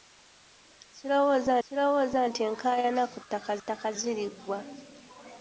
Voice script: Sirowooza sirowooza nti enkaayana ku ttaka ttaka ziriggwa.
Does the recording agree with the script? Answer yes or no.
yes